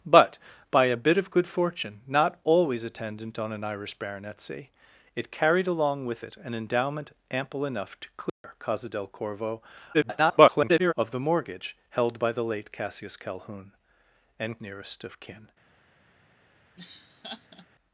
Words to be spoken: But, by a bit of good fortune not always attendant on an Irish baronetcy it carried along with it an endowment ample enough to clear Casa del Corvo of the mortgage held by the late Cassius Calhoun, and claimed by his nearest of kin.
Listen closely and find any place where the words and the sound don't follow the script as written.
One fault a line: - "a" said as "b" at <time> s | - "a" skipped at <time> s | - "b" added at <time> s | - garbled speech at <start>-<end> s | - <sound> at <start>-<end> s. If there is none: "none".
- dropout at 8.3-8.4 s
- garbled speech at 9.9-10.9 s
- "claimed by his" skipped at 14.6 s
- laugh at 16.8-17.7 s